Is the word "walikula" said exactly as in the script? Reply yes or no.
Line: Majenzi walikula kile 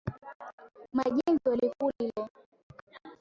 yes